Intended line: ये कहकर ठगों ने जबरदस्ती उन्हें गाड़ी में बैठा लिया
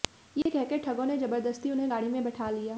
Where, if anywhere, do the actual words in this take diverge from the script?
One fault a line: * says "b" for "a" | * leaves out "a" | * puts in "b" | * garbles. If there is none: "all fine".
all fine